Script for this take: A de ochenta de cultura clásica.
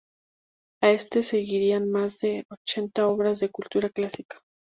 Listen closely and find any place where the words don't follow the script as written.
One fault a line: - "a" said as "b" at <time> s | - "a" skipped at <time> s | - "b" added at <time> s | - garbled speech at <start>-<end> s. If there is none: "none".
- "este seguirían más" added at 0.9 s
- "obras" added at 3.1 s